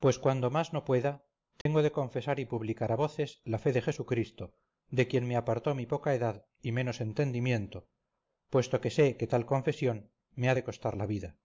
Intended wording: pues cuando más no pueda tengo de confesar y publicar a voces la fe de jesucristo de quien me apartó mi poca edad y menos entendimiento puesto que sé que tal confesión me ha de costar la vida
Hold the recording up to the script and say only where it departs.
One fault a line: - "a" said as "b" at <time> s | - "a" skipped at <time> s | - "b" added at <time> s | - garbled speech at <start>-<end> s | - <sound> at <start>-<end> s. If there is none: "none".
- dropout at 1.6-1.7 s